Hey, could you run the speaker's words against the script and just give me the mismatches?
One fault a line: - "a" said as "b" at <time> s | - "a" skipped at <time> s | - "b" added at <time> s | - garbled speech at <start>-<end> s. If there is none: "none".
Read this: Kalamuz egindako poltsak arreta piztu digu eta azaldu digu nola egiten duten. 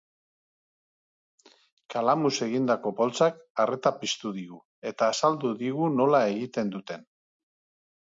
none